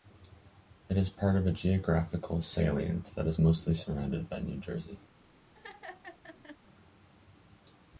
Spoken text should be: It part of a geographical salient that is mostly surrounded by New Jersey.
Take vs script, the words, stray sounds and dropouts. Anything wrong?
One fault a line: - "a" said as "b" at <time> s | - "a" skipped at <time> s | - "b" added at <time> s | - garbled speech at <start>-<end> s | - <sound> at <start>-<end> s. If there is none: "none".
- "is" added at 1.0 s
- laugh at 5.5-6.6 s